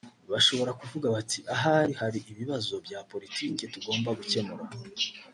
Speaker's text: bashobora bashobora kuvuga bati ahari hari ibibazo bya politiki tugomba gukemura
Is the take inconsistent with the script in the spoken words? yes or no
yes